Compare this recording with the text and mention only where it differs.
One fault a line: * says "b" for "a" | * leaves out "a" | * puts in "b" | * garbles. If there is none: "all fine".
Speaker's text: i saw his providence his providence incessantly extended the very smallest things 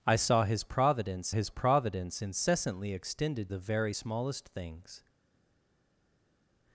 all fine